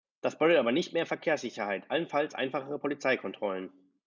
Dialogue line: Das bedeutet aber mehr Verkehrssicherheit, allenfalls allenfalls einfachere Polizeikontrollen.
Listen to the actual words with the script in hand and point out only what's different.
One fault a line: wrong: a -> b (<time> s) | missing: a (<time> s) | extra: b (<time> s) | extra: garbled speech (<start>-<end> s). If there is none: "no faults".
extra: nicht (0.7 s)
missing: allenfalls (2.4 s)